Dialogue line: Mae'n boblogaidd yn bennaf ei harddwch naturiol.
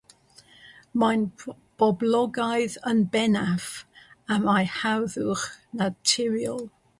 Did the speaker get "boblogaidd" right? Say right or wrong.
right